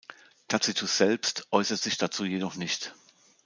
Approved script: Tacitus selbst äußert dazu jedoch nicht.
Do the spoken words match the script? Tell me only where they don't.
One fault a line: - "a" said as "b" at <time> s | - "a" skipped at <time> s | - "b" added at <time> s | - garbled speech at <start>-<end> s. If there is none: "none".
- "sich" added at 1.8 s